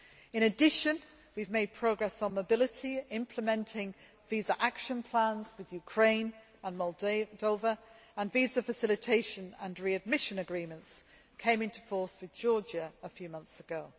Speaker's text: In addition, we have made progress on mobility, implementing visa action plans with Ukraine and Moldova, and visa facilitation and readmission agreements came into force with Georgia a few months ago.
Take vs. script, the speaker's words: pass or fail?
pass